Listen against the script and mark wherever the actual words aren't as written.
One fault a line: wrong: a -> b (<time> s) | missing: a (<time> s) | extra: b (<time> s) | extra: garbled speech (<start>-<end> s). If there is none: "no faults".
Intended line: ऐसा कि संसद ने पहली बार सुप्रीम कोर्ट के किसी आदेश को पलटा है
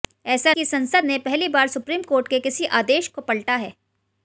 no faults